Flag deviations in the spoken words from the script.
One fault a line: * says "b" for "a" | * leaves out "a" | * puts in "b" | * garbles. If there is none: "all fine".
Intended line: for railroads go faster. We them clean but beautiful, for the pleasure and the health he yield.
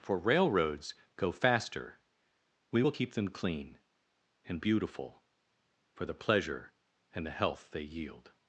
* puts in "will keep"
* says "and" for "but"
* says "they" for "he"